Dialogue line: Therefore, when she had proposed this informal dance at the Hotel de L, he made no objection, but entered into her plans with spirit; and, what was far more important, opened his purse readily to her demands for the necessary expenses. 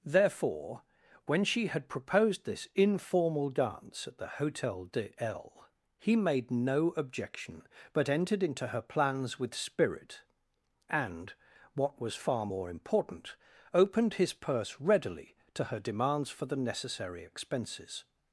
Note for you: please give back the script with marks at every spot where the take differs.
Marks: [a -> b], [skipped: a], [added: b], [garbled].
Therefore, when she had proposed this informal dance at the Hotel de L, he made no objection, but entered into her plans with spirit; and, what was far more important, opened his purse readily to her demands for the necessary expenses.